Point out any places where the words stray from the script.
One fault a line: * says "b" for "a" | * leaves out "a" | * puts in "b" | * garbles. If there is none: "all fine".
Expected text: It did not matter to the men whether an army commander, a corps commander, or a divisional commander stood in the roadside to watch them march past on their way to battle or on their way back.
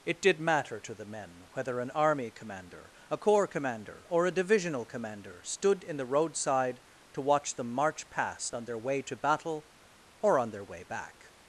* leaves out "not"